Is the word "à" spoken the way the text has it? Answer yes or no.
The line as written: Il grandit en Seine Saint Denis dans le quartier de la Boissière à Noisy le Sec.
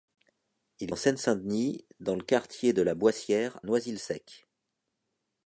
no